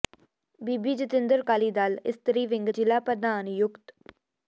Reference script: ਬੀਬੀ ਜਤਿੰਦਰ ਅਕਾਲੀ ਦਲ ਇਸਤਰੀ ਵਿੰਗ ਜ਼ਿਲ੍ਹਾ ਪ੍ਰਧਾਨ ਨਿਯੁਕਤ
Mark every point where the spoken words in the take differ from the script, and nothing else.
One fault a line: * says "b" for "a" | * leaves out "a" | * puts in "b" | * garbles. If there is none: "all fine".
all fine